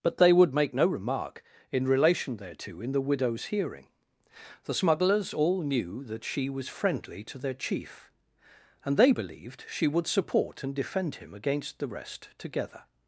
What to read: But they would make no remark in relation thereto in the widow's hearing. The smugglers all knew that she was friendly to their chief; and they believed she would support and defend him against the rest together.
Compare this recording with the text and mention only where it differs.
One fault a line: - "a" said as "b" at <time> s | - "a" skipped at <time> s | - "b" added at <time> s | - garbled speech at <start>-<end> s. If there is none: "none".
none